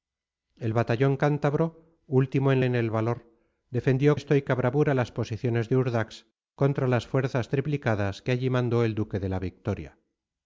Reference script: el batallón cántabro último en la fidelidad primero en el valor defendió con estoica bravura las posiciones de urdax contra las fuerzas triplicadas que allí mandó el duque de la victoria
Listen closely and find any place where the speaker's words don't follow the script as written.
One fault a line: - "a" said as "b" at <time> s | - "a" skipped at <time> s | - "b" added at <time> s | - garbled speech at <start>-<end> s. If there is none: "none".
- "la fidelidad primero" skipped at 2.6 s
- "con" skipped at 4.2 s